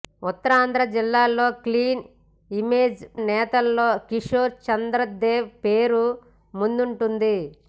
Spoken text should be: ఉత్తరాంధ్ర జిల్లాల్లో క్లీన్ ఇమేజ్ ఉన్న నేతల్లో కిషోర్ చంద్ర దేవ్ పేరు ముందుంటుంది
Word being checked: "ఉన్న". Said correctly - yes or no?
no